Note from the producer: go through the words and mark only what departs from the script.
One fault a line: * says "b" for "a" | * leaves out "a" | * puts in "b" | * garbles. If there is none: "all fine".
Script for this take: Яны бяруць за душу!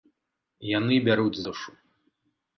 * leaves out "за"